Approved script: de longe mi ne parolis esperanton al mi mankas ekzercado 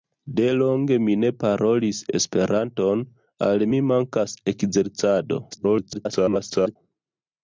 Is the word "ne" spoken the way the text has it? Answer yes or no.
yes